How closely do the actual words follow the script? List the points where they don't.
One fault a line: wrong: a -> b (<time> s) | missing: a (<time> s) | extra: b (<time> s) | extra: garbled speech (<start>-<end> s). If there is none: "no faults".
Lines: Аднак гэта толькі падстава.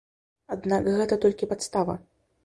no faults